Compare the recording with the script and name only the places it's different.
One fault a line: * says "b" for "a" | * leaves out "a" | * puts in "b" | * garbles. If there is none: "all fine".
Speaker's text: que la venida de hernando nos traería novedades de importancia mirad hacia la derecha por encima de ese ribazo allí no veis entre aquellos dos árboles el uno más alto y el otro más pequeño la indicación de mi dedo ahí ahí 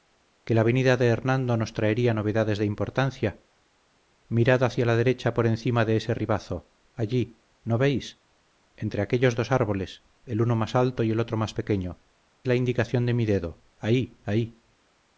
all fine